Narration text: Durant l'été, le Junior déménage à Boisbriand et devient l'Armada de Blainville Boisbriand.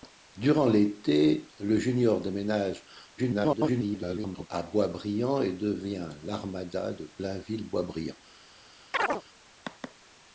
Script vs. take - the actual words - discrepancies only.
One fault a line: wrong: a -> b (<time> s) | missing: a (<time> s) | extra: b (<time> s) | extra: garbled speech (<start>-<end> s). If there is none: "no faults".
extra: garbled speech (3.2-4.5 s)